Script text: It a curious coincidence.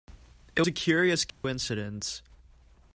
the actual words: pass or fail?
pass